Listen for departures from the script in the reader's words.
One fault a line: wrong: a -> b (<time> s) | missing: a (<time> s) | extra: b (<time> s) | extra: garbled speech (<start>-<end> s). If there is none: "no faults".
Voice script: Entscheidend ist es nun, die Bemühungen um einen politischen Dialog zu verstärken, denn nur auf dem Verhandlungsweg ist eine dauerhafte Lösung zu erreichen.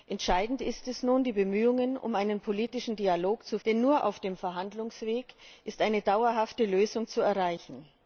missing: verstärken (3.6 s)